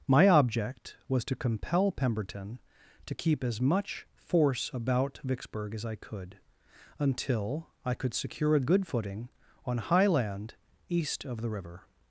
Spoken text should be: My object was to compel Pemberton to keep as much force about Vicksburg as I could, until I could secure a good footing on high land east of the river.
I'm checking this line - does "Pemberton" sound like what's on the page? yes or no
yes